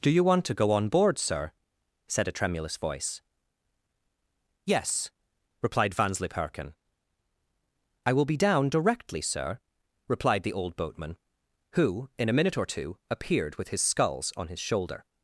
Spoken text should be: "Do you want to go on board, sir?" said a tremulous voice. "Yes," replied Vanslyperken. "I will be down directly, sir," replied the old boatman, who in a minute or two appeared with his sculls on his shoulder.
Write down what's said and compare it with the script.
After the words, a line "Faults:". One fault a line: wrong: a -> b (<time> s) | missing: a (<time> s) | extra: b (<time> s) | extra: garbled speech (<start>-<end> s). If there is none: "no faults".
"Do you want to go on board, sir?" said a tremulous voice. "Yes," replied Vanslyperken. "I will be down directly, sir," replied the old boatman, who in a minute or two appeared with his sculls on his shoulder.
Faults:
no faults